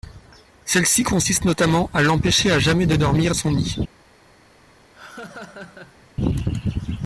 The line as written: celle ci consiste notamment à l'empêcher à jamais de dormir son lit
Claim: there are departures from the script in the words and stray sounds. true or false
true